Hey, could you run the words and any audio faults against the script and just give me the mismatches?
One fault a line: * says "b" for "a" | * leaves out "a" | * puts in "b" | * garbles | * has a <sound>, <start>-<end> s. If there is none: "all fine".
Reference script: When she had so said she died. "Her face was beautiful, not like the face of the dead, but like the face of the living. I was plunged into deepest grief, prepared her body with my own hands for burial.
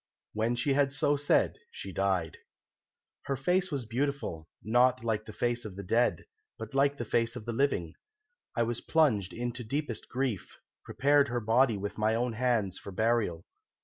all fine